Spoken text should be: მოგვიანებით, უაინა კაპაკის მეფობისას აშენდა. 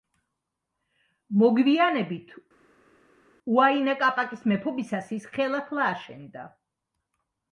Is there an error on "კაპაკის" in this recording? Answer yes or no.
no